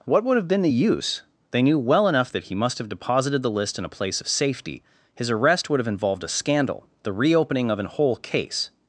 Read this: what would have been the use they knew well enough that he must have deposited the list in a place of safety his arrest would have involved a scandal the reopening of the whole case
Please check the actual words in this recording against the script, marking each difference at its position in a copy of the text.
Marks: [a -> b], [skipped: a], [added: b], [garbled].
what would have been the use they knew well enough that he must have deposited the list in a place of safety his arrest would have involved a scandal the reopening of [the -> an] whole case